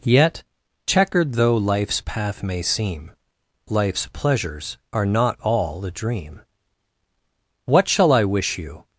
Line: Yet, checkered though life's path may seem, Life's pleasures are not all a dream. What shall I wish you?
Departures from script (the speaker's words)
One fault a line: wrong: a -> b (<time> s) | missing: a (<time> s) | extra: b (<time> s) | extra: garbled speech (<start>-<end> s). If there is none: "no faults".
no faults